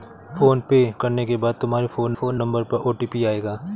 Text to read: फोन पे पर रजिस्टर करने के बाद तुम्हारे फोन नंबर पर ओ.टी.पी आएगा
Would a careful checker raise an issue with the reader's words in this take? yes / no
yes